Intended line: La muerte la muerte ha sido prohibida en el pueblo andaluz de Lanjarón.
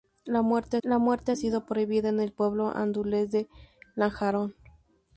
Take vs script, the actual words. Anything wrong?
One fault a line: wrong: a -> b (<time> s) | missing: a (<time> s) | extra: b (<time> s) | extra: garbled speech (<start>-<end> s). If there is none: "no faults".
no faults